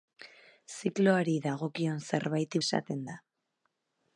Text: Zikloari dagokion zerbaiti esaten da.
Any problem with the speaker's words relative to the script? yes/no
no